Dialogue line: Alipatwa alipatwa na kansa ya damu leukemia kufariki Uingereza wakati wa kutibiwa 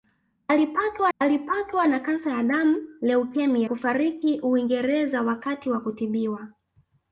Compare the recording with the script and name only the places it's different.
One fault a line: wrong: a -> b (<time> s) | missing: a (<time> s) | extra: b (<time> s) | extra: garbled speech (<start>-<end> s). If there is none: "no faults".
no faults